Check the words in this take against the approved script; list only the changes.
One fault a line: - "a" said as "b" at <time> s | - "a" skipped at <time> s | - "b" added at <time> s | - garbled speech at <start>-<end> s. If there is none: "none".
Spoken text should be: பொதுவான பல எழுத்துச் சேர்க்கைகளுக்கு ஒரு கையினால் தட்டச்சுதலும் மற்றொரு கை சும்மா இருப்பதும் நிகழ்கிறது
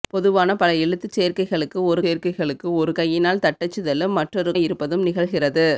- "சேர்க்கைகளுக்கு ஒரு" added at 2.0 s
- "கை சும்மா" skipped at 4.5 s